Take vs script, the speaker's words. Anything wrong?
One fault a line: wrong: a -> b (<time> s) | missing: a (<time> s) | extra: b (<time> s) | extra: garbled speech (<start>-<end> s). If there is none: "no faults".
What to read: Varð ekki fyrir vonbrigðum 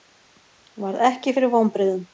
no faults